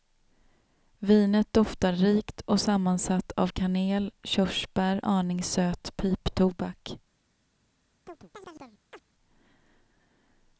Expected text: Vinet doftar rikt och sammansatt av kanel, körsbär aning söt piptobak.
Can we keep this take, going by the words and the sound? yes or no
no